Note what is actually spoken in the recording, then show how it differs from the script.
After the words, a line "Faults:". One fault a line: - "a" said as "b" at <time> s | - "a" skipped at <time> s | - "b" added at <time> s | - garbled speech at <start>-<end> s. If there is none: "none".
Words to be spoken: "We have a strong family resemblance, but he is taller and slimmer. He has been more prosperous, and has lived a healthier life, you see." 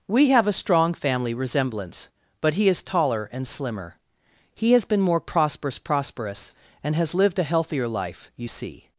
"We have a strong family resemblance, but he is taller and slimmer. He has been more prosperous prosperous, and has lived a healthier life, you see."
Faults:
- "prosperous" added at 5.8 s